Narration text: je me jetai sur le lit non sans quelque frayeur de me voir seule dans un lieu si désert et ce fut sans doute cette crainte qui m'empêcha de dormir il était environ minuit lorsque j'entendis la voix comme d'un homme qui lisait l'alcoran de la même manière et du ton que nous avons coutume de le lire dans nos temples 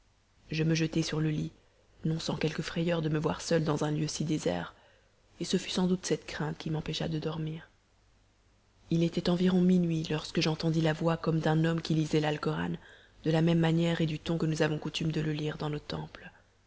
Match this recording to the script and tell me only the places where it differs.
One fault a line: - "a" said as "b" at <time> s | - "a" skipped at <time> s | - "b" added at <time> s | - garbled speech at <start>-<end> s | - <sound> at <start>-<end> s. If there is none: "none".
none